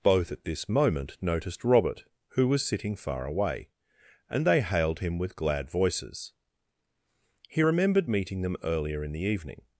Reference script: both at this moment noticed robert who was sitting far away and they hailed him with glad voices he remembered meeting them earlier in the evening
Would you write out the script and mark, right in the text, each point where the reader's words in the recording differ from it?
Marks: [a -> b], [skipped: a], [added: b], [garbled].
both at this moment noticed robert who was sitting far away and they hailed him with glad voices he remembered meeting them earlier in the evening